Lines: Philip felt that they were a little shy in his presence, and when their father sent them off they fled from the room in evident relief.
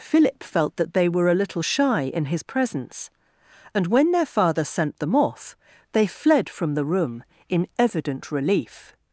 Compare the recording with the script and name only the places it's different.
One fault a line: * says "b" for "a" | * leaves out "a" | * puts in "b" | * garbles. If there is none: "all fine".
all fine